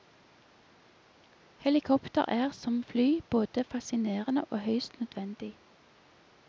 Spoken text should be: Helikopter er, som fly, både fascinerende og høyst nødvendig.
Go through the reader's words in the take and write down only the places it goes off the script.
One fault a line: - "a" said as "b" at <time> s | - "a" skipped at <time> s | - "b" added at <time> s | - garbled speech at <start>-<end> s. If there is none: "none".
none